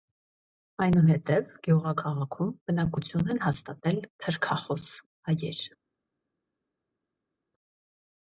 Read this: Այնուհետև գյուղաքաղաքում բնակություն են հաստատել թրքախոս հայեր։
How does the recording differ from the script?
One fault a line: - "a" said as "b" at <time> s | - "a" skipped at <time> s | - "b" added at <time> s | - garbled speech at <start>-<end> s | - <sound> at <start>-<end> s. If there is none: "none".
none